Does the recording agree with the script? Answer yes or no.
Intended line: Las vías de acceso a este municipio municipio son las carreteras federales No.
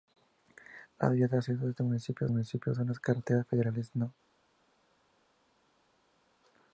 yes